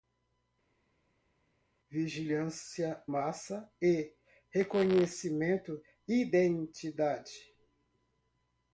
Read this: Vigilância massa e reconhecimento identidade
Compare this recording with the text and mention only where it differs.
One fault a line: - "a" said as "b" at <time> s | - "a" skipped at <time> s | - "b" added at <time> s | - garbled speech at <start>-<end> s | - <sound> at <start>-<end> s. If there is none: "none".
none